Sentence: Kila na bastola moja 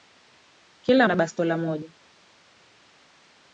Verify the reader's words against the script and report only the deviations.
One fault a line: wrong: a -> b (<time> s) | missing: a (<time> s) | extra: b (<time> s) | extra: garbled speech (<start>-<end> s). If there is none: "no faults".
no faults